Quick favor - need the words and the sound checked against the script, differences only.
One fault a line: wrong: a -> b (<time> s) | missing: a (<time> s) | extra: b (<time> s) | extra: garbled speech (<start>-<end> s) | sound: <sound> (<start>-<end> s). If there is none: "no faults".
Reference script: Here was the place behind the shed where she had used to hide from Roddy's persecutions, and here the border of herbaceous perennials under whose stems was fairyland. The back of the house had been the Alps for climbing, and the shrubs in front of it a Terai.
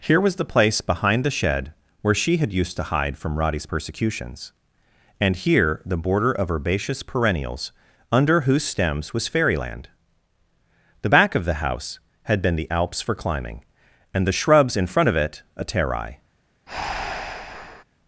sound: breath (16.7-17.8 s)